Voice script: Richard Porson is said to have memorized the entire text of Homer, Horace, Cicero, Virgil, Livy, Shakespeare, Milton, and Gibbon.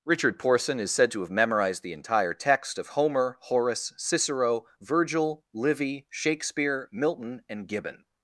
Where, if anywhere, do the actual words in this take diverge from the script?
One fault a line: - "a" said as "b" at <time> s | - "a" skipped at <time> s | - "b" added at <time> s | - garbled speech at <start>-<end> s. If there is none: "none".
none